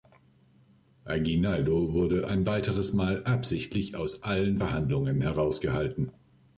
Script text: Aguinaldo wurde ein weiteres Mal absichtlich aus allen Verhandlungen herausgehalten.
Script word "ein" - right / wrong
right